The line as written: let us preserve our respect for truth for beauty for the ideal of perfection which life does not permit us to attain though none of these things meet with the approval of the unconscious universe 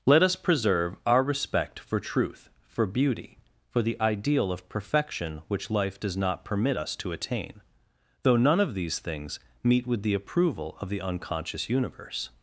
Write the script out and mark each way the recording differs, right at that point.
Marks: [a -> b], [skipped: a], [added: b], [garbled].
let us preserve our respect for truth for beauty for the ideal of perfection which life does not permit us to attain though none of these things meet with the approval of the unconscious universe